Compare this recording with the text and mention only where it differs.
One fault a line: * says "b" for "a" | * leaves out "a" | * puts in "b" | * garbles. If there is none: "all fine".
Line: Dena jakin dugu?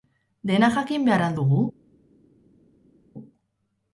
* puts in "behar al"